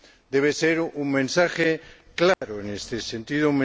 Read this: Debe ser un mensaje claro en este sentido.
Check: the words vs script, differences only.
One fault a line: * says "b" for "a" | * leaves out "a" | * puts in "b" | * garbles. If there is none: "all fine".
all fine